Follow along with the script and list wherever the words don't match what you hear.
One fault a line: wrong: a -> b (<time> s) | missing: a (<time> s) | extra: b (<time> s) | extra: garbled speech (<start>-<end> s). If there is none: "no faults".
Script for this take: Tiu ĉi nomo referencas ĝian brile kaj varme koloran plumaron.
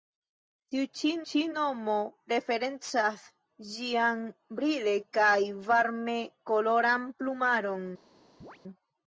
extra: ĉi (1.3 s)